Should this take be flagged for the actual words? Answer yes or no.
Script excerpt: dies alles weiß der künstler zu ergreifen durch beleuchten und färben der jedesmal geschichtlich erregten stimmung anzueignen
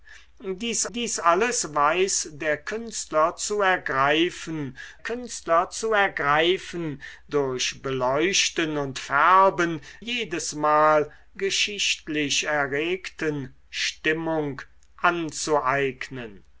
yes